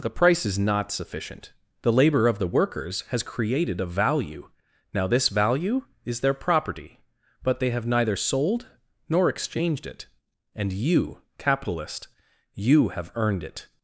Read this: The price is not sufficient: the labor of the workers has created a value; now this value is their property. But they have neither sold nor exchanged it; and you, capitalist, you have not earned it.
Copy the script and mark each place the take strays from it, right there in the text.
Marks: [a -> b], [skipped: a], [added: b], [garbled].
The price is not sufficient: the labor of the workers has created a value; now this value is their property. But they have neither sold nor exchanged it; and you, capitalist, you have [skipped: not] earned it.